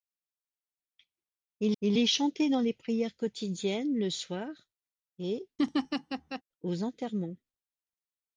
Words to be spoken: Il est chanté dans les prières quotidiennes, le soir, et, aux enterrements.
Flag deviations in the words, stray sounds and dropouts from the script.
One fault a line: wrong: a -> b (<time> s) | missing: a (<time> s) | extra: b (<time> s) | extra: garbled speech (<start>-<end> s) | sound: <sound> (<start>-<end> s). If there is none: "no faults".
extra: il (1.8 s)
sound: laugh (5.6-6.4 s)